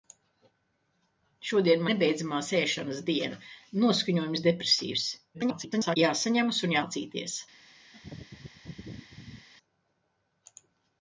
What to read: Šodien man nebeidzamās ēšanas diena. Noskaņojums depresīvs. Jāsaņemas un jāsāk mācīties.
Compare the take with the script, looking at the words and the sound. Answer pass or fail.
fail